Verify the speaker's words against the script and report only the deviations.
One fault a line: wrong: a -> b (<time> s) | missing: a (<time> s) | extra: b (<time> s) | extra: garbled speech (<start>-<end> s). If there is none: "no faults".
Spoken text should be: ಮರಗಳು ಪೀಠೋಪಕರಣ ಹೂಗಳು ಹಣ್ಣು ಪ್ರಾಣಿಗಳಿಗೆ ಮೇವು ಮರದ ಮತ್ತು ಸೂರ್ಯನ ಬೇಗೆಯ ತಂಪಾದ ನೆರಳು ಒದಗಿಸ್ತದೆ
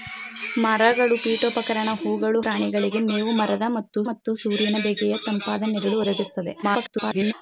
missing: ಹಣ್ಣು (2.4 s)
extra: ಮತ್ತು (4.1 s)
extra: garbled speech (6.6-7.3 s)